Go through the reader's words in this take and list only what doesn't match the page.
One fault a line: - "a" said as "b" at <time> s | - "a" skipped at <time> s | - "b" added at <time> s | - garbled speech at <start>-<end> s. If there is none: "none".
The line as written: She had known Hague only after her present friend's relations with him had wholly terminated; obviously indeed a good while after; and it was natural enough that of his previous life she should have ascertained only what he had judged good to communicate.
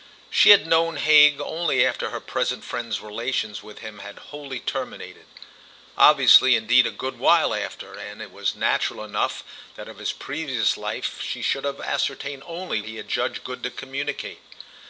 - "what" skipped at 12.8 s